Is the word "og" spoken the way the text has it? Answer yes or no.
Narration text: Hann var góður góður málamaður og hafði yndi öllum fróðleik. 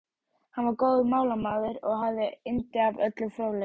yes